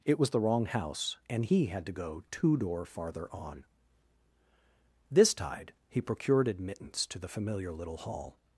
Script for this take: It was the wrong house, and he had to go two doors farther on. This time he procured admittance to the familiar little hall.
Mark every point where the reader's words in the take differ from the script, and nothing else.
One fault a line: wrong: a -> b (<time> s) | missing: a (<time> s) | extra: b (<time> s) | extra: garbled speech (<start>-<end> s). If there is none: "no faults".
wrong: doors -> door (2.6 s)
wrong: time -> tide (5.3 s)